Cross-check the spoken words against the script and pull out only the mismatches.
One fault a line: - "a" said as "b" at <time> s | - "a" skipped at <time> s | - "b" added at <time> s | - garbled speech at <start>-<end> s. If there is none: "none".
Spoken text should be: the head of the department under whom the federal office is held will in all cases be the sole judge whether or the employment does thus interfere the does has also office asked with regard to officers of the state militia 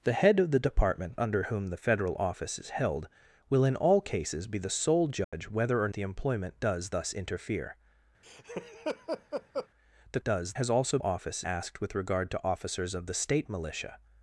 none